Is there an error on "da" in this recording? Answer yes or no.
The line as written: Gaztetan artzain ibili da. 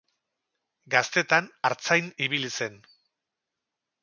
yes